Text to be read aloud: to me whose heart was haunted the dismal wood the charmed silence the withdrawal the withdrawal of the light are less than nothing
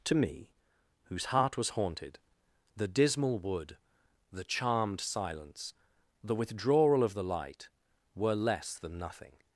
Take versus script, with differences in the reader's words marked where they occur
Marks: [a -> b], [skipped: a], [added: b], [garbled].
to me whose heart was haunted the dismal wood the charmed silence the withdrawal [skipped: the withdrawal] of the light [are -> were] less than nothing